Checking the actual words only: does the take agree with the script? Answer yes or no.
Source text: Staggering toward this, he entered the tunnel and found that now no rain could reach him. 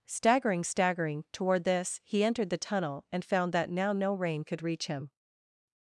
no